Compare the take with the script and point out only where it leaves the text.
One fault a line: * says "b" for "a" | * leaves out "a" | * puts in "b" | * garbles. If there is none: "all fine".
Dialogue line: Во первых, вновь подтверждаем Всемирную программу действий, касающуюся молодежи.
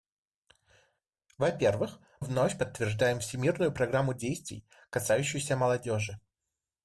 all fine